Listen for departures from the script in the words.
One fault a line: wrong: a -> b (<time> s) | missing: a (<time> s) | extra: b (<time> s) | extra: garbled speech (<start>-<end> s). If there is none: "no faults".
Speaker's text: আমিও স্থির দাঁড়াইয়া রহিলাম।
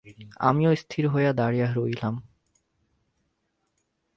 extra: হইয়া (1.1 s)